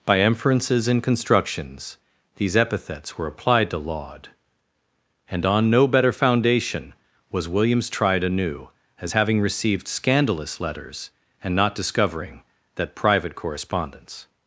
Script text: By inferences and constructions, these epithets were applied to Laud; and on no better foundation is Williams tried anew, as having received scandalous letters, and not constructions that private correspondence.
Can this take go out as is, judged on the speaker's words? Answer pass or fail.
fail